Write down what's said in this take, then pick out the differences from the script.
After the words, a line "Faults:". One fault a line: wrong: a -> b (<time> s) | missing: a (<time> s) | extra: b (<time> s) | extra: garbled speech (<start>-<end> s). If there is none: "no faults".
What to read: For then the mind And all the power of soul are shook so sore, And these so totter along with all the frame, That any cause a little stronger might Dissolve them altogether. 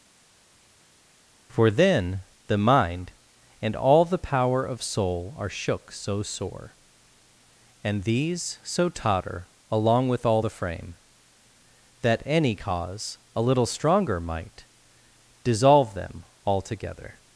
For then the mind And all the power of soul are shook so sore, And these so totter along with all the frame, That any cause a little stronger might Dissolve them altogether.
Faults:
no faults